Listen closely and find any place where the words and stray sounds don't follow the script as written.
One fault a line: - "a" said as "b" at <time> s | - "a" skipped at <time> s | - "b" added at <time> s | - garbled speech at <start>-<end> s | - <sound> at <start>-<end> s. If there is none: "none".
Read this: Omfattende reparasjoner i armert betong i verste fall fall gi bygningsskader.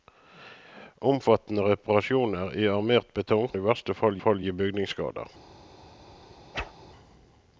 - whoosh at 6.5-6.7 s